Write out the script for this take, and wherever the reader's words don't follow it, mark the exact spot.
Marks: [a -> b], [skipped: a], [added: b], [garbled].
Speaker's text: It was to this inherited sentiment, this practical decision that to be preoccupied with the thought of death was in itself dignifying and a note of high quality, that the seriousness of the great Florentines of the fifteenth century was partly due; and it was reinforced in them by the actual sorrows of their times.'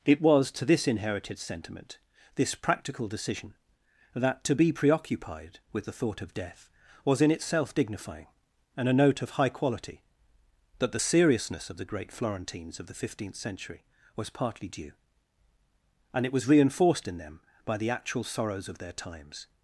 It was to this inherited sentiment, this practical decision that to be preoccupied with the thought of death was in itself dignifying and a note of high quality, that the seriousness of the great Florentines of the fifteenth century was partly due; and it was reinforced in them by the actual sorrows of their times.'